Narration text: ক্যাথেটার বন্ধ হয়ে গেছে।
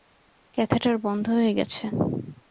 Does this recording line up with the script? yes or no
yes